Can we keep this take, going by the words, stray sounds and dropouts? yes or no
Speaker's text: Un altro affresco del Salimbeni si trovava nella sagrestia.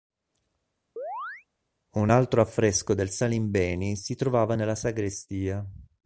no